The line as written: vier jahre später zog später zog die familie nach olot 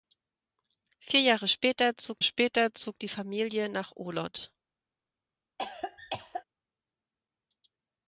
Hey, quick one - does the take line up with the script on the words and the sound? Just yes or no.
no